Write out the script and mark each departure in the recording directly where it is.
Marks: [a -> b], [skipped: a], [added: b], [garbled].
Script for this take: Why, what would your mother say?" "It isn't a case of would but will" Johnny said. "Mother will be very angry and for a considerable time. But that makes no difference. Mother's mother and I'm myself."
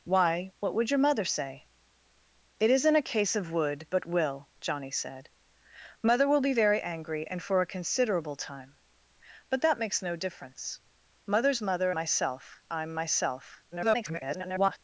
Why, what would your mother say?" "It isn't a case of would but will" Johnny said. "Mother will be very angry and for a considerable time. But that makes no difference. Mother's mother [and -> myself] I'm myself." [garbled]